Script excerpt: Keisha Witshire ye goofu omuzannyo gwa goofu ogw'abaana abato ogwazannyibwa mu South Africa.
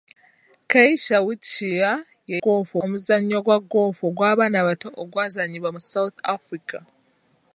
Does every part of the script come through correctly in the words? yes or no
yes